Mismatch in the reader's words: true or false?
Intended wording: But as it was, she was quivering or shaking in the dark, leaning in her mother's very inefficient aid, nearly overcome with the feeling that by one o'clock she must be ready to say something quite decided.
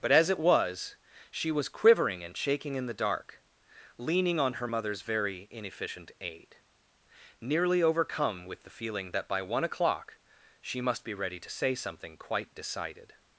true